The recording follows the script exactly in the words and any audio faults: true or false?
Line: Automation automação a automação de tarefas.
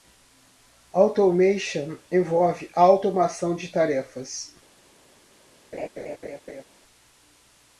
false